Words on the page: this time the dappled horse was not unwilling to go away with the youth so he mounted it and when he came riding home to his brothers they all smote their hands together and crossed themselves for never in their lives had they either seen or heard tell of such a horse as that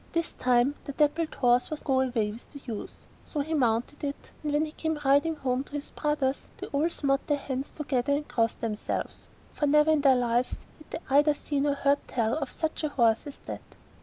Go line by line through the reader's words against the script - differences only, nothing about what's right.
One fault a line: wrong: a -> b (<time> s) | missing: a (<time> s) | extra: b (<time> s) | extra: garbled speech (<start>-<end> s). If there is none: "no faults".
missing: not unwilling to (1.9 s)